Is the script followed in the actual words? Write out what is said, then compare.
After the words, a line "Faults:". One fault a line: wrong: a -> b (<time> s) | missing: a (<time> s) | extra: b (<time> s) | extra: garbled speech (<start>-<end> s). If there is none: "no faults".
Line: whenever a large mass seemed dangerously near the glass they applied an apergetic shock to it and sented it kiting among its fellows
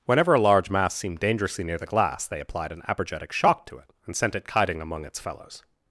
whenever a large mass seemed dangerously near the glass they applied an apergetic shock to it and sent it kiting among its fellows
Faults:
wrong: sented -> sent (4.2 s)